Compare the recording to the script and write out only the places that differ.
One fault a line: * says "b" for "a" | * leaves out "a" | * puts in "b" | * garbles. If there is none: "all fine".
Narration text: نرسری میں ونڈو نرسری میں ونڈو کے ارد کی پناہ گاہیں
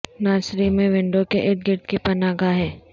* leaves out "نرسری میں ونڈو"
* puts in "گرد"